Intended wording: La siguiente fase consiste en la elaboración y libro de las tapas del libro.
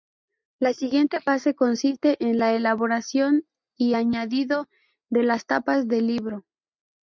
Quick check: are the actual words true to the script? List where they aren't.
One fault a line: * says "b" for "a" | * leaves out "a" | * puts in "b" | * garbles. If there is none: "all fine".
* says "añadido" for "libro"